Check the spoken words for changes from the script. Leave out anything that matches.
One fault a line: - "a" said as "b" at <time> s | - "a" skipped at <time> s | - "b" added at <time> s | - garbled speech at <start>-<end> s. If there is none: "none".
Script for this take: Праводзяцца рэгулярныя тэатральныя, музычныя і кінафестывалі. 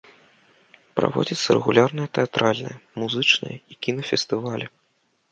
none